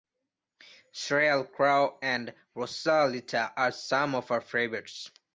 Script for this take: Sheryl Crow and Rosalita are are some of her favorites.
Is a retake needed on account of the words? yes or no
yes